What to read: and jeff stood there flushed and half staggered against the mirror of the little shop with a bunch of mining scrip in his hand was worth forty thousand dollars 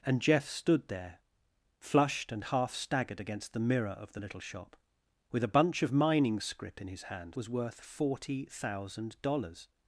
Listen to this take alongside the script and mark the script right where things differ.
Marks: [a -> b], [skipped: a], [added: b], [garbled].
and jeff stood there flushed and half staggered against the mirror of the little shop with a bunch of mining scrip in his hand was worth forty thousand dollars